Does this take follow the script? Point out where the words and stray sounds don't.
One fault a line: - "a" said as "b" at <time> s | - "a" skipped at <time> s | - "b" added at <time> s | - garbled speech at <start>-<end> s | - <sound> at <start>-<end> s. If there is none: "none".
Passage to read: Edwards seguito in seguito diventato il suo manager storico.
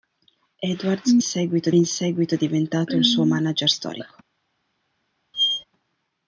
- squeak at 5.3-5.6 s